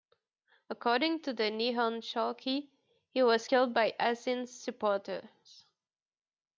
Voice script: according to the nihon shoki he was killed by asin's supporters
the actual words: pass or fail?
pass